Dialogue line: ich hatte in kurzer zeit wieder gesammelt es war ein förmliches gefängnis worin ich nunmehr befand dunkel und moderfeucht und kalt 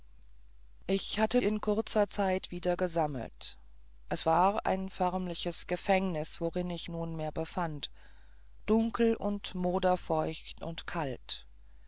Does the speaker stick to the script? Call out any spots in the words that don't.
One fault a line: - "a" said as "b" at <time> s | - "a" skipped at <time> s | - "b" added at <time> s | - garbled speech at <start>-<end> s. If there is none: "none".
none